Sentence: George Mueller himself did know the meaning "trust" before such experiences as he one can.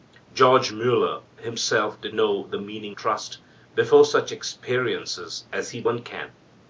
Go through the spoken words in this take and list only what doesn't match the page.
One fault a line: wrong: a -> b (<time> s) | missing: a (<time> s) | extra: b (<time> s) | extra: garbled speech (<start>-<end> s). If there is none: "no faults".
no faults